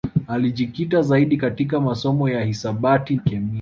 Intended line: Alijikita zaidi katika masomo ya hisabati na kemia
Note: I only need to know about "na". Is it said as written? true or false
false